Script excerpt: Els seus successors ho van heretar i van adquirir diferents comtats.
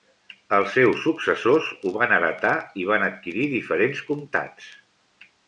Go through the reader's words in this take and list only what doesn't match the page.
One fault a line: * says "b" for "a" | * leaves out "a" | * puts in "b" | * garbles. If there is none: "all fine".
all fine